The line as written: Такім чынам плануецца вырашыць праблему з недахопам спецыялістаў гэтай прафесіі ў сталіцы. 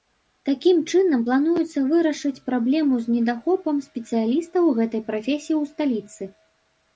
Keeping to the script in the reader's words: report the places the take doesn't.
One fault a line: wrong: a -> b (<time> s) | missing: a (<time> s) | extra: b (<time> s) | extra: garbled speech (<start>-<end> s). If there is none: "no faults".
no faults